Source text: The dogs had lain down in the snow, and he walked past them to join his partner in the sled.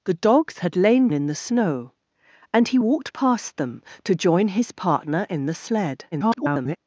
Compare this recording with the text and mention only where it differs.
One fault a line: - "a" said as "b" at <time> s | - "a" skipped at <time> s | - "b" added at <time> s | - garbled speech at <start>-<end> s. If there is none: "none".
- "down" skipped at 1.1 s
- garbled speech at 6.1-6.8 s